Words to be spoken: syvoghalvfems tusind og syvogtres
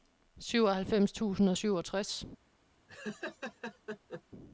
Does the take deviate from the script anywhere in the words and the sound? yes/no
yes